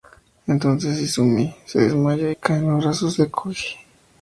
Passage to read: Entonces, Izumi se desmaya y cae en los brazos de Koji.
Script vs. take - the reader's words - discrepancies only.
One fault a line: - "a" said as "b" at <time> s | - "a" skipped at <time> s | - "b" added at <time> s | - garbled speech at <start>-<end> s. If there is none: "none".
none